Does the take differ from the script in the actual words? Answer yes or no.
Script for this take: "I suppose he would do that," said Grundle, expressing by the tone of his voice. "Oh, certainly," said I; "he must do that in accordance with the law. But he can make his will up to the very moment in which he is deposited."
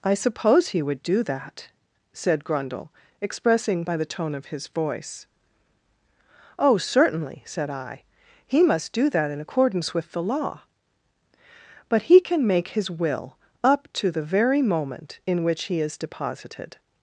no